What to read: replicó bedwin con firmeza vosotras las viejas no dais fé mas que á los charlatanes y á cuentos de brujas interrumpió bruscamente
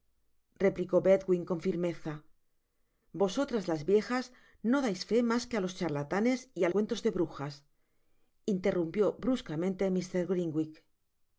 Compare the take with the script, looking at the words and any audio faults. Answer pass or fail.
pass